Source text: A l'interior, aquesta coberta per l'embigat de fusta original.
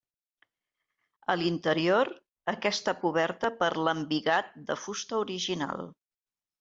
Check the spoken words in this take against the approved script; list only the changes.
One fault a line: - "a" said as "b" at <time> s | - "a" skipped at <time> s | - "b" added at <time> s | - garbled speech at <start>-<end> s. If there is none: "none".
none